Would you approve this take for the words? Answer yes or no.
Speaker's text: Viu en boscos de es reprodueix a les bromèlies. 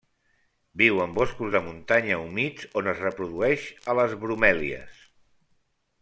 no